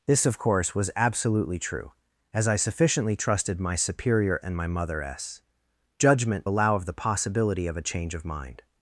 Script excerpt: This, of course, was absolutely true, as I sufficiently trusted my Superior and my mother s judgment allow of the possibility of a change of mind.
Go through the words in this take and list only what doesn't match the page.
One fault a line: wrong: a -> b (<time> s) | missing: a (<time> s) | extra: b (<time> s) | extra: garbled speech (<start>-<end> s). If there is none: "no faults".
no faults